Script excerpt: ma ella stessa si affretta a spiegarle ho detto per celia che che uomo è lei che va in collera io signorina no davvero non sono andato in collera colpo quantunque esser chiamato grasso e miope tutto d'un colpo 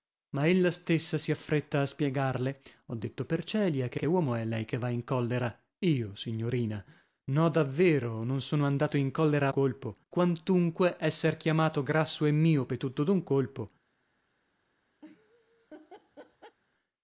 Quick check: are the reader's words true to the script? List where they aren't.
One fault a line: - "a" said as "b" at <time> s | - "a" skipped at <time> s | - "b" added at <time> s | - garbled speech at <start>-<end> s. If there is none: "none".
none